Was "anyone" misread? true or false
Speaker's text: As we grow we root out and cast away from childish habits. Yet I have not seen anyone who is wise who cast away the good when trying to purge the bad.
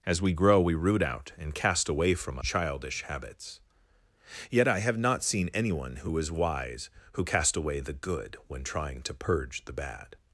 false